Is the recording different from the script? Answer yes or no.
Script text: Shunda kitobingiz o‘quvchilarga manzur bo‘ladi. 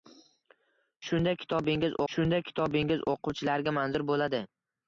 yes